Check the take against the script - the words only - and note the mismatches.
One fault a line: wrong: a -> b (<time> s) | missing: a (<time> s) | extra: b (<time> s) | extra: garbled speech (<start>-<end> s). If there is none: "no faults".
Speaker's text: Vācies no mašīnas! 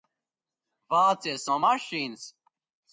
no faults